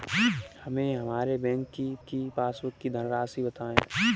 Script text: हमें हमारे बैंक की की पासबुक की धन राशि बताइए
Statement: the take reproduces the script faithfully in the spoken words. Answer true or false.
true